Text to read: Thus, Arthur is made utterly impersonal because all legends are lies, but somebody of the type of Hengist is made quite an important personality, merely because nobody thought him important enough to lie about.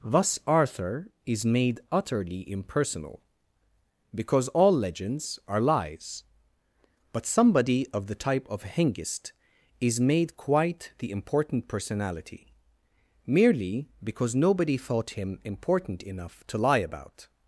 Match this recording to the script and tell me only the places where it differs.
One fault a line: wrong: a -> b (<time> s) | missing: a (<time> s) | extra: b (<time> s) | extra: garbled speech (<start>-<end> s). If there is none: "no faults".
wrong: an -> the (11.0 s)